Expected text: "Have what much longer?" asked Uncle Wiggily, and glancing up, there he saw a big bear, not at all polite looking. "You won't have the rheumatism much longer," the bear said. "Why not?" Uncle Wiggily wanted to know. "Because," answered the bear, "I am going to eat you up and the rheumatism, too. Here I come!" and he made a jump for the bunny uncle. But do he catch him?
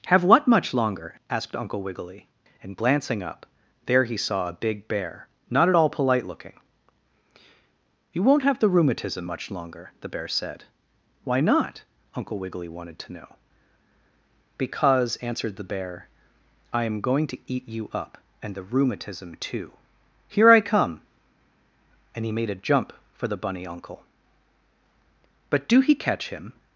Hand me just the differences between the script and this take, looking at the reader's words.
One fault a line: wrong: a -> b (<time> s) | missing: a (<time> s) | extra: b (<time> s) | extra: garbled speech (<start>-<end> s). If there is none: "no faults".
no faults